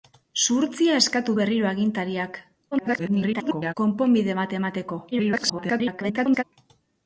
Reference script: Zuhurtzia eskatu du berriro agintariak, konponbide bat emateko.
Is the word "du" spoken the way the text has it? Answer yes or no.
no